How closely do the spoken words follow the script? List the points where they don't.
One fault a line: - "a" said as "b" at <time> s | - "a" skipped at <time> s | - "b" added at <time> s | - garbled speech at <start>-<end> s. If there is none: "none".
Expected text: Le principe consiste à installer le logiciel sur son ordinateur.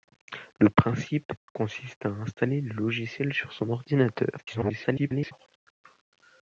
- garbled speech at 4.4-5.3 s